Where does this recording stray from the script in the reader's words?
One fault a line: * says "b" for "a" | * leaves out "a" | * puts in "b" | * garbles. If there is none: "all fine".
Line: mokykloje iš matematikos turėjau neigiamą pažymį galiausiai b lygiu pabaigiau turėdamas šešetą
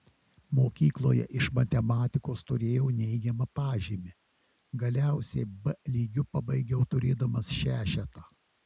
all fine